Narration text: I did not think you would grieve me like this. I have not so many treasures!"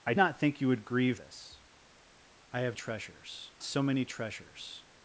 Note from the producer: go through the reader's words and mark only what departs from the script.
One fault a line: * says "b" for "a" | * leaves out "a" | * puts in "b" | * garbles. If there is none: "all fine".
* leaves out "did"
* leaves out "me like"
* says "treasures" for "not"